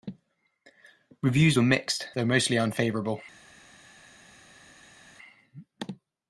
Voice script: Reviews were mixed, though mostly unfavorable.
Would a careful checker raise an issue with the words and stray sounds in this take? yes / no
no